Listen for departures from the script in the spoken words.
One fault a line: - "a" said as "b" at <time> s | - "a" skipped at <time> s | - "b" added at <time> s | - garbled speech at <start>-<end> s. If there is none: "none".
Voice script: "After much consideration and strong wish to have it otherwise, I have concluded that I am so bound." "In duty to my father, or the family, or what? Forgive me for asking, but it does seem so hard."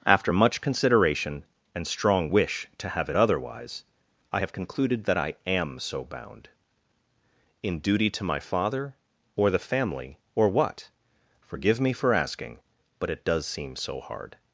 none